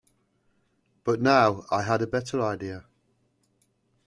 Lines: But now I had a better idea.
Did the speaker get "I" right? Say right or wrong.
right